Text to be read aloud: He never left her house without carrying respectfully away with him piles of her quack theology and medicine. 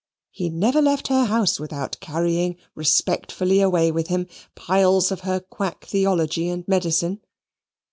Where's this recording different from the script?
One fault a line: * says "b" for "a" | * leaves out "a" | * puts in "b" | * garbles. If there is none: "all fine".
all fine